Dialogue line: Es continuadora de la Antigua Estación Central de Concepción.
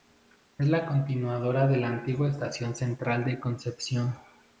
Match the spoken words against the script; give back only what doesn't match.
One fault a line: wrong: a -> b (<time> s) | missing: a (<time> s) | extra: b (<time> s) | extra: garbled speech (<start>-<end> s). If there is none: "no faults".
extra: la (0.7 s)